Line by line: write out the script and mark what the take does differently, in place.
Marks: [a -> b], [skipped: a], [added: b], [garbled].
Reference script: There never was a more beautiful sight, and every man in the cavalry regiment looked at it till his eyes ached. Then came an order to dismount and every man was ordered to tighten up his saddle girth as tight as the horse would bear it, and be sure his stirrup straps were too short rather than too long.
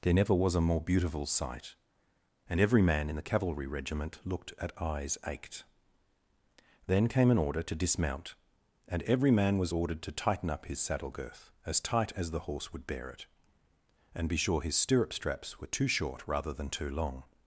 There never was a more beautiful sight, and every man in the cavalry regiment looked at [skipped: it till his] eyes ached. Then came an order to dismount and every man was ordered to tighten up his saddle girth as tight as the horse would bear it, and be sure his stirrup straps were too short rather than too long.